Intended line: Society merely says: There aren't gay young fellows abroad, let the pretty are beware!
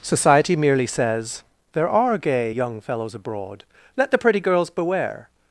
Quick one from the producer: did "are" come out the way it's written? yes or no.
no